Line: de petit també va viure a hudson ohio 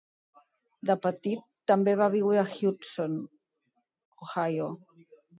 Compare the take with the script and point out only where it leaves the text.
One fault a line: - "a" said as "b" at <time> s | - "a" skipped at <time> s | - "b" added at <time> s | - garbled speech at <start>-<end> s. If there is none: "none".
none